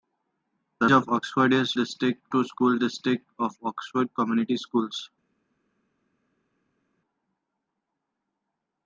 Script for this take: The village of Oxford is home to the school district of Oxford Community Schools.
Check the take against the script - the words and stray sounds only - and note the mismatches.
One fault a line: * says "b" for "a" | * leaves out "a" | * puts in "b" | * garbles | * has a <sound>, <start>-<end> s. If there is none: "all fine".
* leaves out "village"
* says "district" for "home"